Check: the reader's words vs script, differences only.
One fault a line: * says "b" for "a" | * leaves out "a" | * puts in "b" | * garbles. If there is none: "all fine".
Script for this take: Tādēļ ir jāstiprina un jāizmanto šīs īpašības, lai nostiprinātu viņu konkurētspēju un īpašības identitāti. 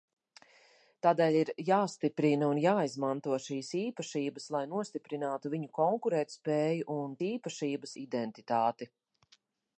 all fine